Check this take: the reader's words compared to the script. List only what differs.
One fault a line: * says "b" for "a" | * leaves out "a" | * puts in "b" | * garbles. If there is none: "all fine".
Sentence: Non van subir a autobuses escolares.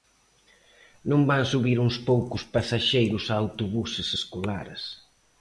* puts in "uns poucos pasaxeiros"